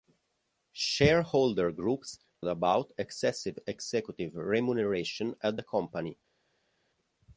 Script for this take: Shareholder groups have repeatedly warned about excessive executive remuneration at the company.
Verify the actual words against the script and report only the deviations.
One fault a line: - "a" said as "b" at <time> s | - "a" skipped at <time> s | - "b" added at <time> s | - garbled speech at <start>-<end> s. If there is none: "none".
- "have repeatedly warned" skipped at 2.2 s